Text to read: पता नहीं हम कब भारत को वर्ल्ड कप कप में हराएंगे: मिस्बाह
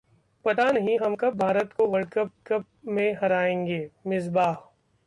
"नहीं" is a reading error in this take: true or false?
false